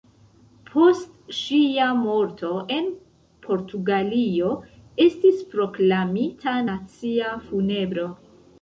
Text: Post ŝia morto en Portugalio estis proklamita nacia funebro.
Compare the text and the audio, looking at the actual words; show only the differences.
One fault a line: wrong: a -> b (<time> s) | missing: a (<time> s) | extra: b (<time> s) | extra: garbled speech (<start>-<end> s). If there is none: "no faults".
no faults